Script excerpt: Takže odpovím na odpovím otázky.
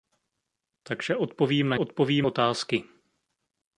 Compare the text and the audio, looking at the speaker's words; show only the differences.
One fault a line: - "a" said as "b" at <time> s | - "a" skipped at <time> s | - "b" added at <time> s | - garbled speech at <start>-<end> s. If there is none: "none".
none